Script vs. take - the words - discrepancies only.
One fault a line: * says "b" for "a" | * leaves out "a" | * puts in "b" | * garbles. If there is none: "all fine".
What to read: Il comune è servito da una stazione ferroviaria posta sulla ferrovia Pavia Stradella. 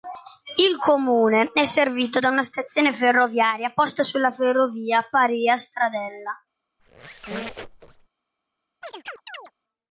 all fine